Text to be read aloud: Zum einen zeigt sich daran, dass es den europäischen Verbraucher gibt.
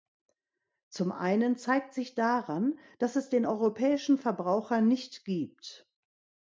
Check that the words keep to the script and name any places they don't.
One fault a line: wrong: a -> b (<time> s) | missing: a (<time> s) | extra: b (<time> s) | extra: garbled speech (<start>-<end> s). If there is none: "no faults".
extra: nicht (4.8 s)